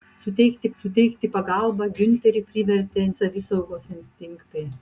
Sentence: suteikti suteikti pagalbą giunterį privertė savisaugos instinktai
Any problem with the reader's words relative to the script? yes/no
no